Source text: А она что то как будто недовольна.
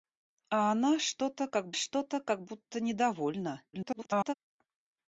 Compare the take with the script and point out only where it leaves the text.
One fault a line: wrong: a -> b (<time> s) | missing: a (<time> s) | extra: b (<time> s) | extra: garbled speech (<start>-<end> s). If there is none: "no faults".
extra: что то как (1.7 s)
extra: garbled speech (3.7-4.3 s)